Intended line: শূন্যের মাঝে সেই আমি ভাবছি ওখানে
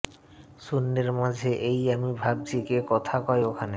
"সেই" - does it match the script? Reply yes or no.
no